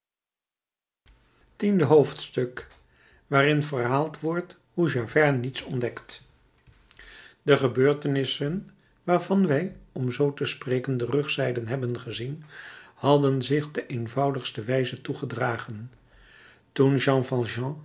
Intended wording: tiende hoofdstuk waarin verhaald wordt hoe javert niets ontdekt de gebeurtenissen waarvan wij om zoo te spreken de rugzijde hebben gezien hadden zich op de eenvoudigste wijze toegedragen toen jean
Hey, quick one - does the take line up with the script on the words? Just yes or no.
no